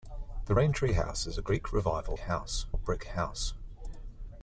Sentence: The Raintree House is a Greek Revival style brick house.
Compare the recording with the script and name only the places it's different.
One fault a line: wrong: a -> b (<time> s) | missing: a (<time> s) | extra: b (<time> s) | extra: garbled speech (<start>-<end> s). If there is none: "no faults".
wrong: style -> house (2.2 s)